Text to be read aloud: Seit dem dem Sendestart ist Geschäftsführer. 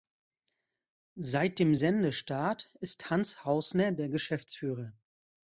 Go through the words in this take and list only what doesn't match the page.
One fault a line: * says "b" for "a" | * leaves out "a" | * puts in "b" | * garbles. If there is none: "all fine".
* leaves out "dem"
* puts in "Hans Hausner der"